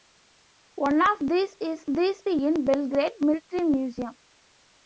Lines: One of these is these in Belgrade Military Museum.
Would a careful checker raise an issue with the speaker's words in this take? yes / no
no